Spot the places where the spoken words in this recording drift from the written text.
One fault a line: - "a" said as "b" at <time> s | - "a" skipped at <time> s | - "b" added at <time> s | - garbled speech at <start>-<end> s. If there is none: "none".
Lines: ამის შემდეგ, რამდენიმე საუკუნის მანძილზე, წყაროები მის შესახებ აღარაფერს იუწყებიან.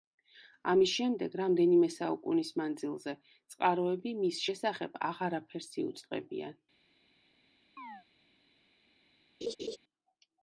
none